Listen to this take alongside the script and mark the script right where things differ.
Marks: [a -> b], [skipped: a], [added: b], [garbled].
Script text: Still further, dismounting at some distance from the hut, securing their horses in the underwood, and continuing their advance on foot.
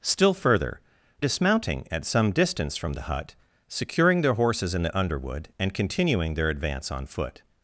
Still further, dismounting at some distance from the hut, securing their horses in the underwood, and continuing their advance on foot.